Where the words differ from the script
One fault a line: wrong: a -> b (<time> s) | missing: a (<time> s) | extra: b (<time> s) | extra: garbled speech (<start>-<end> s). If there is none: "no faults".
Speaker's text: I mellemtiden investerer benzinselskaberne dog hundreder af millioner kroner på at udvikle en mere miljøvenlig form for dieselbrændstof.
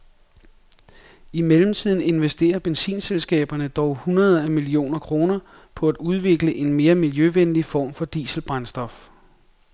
no faults